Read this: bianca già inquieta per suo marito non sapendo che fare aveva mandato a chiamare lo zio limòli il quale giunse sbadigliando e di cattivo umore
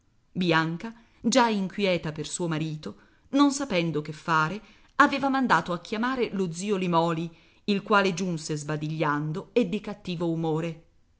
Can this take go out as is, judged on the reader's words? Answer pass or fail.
pass